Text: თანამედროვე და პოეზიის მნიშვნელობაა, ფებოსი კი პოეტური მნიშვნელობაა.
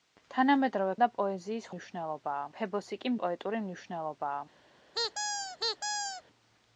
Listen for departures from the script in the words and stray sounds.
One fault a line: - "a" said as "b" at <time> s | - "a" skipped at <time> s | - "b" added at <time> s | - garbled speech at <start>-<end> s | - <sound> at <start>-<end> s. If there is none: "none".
- squeak at 4.9-6.2 s